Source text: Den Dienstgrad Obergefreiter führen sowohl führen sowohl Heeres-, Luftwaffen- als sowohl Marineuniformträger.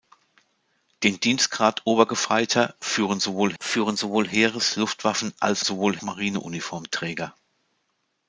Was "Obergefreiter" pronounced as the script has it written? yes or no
yes